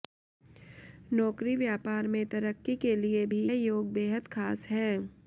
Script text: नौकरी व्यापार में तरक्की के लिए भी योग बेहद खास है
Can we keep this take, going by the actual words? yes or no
yes